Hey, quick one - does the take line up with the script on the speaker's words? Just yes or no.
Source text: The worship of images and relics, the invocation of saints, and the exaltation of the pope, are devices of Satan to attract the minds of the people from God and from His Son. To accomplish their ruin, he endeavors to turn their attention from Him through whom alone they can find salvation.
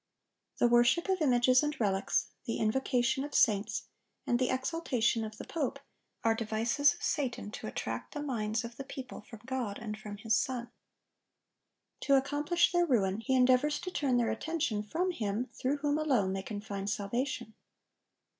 yes